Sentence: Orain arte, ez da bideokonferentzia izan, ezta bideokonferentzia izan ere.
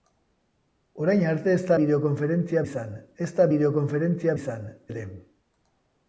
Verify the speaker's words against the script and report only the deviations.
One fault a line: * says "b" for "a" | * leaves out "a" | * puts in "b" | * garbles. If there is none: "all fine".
all fine